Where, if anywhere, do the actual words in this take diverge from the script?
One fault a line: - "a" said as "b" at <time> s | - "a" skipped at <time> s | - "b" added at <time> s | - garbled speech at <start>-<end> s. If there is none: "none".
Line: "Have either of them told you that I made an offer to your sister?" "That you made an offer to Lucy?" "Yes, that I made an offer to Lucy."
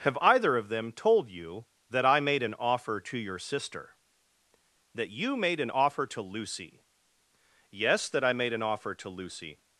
none